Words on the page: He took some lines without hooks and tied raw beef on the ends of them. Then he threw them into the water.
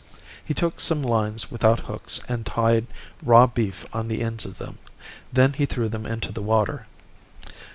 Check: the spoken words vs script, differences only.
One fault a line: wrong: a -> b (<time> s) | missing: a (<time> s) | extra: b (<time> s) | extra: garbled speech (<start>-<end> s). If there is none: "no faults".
no faults